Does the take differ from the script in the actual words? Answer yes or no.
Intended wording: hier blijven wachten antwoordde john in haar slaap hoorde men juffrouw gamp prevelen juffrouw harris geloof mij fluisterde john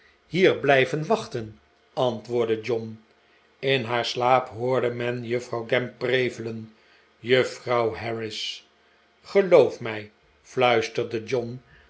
no